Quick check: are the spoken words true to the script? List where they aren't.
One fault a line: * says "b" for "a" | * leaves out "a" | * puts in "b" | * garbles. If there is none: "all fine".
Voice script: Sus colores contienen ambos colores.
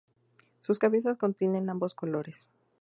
* says "cabezas" for "colores"